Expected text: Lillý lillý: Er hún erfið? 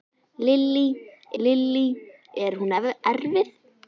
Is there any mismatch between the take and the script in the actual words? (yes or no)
no